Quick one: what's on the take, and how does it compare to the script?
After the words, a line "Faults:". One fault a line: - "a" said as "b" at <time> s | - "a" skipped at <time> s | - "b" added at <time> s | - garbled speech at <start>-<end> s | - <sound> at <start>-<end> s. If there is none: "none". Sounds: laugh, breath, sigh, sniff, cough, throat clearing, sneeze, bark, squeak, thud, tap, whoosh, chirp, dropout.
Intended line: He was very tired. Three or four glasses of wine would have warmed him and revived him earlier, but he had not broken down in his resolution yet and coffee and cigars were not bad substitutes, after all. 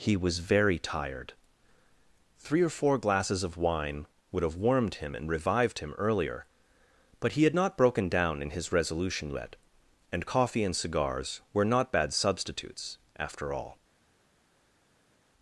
He was very tired. Three or four glasses of wine would have warmed him and revived him earlier, but he had not broken down in his resolution yet and coffee and cigars were not bad substitutes, after all.
Faults:
none